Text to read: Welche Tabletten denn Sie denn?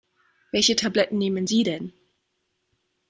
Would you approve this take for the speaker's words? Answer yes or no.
no